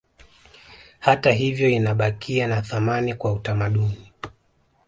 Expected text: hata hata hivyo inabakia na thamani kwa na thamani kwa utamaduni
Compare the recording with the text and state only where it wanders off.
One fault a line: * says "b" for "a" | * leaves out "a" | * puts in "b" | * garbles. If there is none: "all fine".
* leaves out "hata"
* leaves out "na thamani kwa"